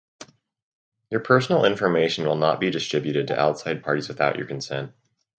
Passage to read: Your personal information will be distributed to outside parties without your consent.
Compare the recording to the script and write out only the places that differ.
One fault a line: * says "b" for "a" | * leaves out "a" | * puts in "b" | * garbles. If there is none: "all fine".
* puts in "not"